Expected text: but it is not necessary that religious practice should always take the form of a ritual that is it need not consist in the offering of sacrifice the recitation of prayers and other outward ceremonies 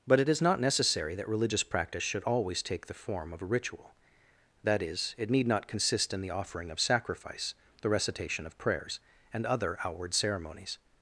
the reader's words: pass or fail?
pass